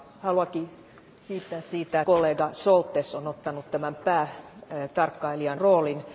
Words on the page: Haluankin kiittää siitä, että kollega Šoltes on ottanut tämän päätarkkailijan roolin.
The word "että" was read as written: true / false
false